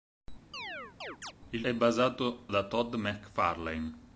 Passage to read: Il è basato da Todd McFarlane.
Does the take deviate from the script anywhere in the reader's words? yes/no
no